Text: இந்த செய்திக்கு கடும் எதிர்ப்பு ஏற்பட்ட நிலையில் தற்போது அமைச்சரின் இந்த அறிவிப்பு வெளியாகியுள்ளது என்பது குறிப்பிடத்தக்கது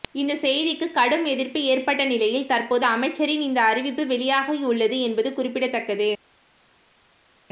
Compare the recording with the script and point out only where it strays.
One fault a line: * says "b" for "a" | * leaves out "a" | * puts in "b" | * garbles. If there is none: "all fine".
all fine